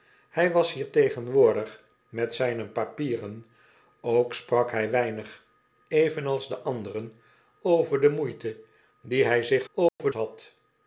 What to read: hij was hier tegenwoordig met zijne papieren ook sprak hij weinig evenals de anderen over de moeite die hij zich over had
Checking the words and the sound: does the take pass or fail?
fail